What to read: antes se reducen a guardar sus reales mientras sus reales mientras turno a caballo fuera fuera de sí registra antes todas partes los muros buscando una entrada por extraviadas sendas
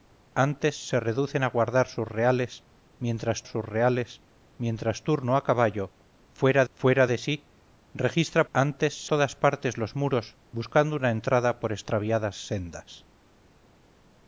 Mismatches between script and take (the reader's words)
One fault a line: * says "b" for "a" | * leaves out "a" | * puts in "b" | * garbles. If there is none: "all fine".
all fine